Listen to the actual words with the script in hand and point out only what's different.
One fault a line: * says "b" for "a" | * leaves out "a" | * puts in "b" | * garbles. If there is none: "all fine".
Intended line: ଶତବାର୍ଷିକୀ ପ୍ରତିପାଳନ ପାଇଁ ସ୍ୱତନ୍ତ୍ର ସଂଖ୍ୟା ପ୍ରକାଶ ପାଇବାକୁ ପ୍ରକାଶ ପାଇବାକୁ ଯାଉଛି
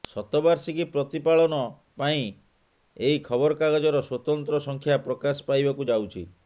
* puts in "ଏହି ଖବରକାଗଜର"
* leaves out "ପ୍ରକାଶ ପାଇବାକୁ"